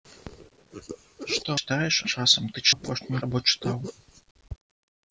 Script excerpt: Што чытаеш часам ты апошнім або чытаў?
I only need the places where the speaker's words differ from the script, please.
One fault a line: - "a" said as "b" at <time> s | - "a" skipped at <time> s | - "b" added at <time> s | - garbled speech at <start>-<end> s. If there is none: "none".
none